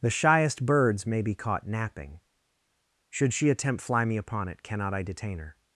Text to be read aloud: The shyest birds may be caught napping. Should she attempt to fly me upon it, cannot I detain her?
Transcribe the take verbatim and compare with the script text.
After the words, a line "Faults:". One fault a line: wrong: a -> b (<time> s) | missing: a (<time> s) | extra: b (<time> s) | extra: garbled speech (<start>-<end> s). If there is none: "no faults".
The shyest birds may be caught napping. Should she attempt fly me upon it, cannot I detain her?
Faults:
missing: to (3.8 s)